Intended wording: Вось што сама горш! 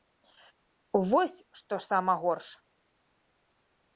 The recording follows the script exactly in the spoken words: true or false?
true